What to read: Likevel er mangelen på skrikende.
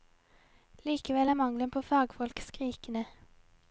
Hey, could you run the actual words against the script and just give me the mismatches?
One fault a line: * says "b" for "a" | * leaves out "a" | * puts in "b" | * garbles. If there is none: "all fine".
* puts in "fagfolk"